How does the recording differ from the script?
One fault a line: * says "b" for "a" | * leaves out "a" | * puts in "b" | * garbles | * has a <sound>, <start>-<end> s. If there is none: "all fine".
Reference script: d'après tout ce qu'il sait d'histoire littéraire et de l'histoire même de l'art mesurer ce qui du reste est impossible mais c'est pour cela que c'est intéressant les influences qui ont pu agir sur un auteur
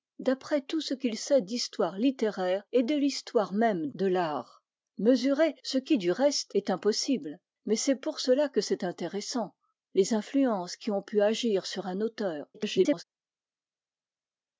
* garbles